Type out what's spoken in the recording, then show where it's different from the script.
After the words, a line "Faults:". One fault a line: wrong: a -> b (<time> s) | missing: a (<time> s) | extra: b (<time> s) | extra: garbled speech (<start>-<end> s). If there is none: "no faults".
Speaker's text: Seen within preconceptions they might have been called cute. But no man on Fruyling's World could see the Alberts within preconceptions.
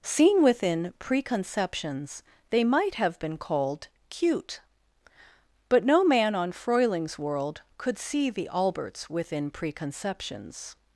Seen within preconceptions they might have been called cute. But no man on Fruyling's World could see the Alberts within preconceptions.
Faults:
no faults